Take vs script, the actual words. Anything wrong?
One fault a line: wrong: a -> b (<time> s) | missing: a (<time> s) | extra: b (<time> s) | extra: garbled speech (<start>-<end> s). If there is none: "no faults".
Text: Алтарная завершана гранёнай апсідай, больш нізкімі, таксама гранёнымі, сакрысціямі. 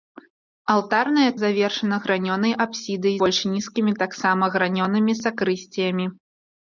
no faults